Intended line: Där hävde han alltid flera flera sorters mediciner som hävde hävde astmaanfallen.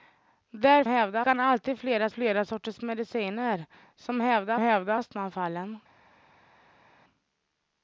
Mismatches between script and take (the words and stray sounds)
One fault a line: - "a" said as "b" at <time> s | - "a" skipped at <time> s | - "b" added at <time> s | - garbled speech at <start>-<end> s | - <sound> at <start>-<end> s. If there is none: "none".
none